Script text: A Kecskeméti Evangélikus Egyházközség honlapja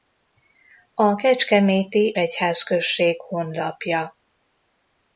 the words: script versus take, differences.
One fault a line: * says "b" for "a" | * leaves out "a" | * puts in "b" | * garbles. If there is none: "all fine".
* leaves out "Evangélikus"